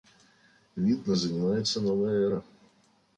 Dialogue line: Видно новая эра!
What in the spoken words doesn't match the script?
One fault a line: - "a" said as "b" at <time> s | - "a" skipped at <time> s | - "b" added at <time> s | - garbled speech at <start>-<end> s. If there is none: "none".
- "занимается" added at 1.1 s